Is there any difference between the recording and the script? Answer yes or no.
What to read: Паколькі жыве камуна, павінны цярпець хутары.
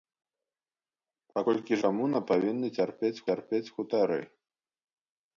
yes